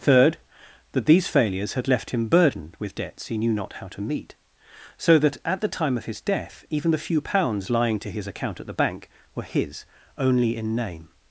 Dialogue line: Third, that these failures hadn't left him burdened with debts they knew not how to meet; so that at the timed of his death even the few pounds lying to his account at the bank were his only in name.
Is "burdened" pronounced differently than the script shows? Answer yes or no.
no